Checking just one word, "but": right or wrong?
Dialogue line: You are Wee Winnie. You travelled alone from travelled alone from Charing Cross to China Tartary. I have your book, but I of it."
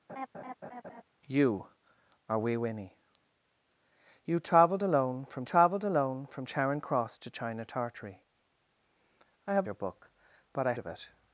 right